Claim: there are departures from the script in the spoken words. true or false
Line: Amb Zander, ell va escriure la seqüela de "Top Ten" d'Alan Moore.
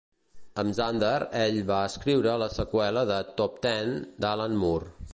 false